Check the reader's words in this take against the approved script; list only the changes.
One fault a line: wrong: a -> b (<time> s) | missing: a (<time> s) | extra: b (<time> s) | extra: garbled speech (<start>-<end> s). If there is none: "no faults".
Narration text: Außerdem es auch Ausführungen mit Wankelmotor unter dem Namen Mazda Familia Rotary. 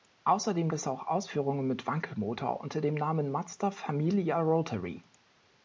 no faults